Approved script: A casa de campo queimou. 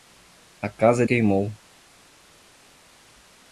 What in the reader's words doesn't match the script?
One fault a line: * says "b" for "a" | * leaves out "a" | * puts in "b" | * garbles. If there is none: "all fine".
* leaves out "de campo"